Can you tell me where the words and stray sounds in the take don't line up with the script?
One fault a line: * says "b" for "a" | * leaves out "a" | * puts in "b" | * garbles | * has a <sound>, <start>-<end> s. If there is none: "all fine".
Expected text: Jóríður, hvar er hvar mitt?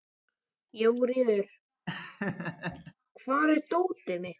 * has a laugh, 1.9-2.9 s
* says "dótið" for "hvar"